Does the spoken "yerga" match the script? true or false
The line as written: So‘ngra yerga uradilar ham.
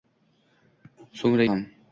false